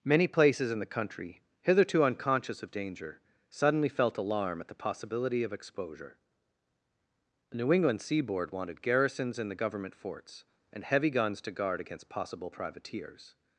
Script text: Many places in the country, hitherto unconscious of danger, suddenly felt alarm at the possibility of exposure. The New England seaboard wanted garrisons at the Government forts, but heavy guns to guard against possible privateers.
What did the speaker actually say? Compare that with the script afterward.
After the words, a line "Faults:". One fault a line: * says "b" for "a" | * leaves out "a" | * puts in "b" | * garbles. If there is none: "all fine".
Many places in the country, hitherto unconscious of danger, suddenly felt alarm at the possibility of exposure. The New England seaboard wanted garrisons in the Government forts, and heavy guns to guard against possible privateers.
Faults:
* says "in" for "at"
* says "and" for "but"